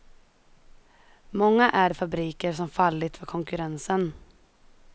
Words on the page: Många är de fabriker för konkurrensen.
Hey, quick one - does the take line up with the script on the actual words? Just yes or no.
no